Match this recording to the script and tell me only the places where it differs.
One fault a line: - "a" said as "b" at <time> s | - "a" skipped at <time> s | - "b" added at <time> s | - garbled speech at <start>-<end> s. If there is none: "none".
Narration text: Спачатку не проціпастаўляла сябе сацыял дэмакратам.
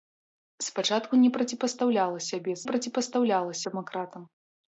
- "сацыял" said as "проціпастаўляла" at 2.7 s